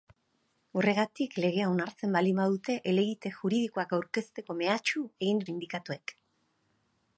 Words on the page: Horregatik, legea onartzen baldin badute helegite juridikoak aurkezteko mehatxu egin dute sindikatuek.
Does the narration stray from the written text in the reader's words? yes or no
yes